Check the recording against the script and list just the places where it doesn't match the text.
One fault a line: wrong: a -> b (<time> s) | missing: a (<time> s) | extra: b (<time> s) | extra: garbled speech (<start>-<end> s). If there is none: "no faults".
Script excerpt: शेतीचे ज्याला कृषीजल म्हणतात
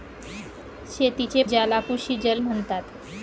no faults